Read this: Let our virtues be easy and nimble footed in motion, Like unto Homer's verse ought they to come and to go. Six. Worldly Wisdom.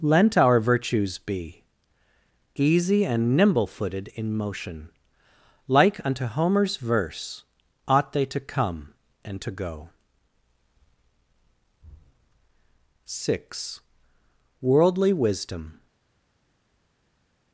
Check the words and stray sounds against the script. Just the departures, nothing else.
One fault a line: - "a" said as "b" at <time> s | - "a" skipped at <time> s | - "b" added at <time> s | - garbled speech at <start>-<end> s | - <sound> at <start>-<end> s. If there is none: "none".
- "Let" said as "Lent" at 0.0 s